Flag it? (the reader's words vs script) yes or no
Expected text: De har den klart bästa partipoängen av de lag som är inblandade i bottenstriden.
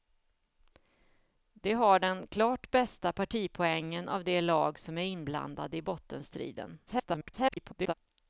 yes